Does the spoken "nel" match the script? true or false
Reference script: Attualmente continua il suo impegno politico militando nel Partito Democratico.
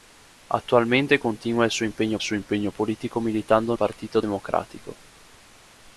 false